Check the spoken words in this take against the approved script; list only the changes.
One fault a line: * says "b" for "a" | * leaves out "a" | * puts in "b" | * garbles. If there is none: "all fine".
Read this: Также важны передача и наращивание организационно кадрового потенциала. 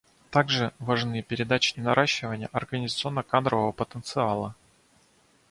all fine